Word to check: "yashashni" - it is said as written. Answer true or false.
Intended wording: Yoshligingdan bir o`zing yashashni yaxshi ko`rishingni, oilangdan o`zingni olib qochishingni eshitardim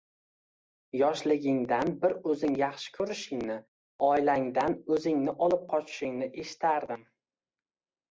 false